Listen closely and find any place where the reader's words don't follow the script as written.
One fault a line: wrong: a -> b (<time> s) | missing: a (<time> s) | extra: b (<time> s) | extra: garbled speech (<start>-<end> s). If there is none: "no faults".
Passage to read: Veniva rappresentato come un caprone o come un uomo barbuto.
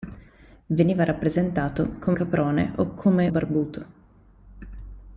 missing: un (2.2 s)
missing: un uomo (3.3 s)